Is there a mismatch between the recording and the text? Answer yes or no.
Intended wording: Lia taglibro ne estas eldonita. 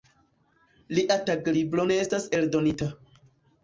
no